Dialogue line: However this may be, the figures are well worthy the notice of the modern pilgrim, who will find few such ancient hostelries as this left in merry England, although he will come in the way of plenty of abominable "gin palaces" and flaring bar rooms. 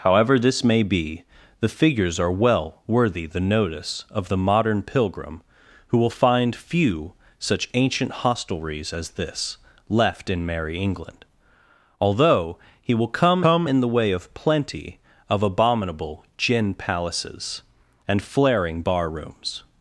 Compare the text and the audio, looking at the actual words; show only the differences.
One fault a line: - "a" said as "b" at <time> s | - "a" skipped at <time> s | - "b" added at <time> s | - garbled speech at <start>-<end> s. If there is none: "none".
- "come" added at 13.4 s